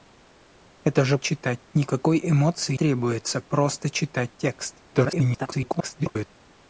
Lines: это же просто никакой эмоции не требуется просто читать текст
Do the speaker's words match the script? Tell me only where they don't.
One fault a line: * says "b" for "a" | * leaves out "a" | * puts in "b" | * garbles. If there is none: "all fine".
* says "читать" for "просто"
* leaves out "не"
* garbles